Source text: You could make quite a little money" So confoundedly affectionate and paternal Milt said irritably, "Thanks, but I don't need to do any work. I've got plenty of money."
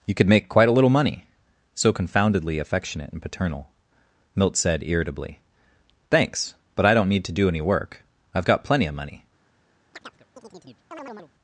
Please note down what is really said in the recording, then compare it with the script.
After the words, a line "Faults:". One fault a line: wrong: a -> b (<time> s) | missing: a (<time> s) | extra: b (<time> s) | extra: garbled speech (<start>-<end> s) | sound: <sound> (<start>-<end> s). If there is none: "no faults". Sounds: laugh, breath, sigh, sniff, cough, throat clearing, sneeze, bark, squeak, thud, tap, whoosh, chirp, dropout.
You could make quite a little money" So confoundedly affectionate and paternal Milt said irritably, "Thanks, but I don't need to do any work. I've got plenty of money."
Faults:
sound: chirp (9.9-11.3 s)